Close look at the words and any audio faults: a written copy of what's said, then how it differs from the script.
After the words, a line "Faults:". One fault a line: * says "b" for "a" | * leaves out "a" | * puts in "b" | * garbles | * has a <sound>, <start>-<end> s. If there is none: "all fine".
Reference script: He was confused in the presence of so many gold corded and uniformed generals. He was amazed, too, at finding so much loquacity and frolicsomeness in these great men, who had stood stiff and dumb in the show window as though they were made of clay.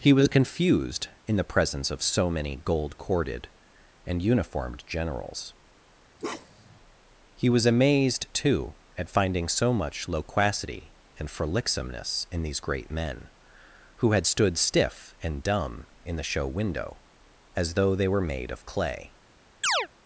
He was confused in the presence of so many gold corded and uniformed generals. He was amazed, too, at finding so much loquacity and frolicsomeness in these great men, who had stood stiff and dumb in the show window as though they were made of clay.
Faults:
* has a bark, 6.2-6.8 s
* has a chirp, 19.6-19.9 s